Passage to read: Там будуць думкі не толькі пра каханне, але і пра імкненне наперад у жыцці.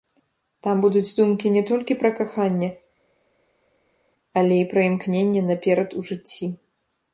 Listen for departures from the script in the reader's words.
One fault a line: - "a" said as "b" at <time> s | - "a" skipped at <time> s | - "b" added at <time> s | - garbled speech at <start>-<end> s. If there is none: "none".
none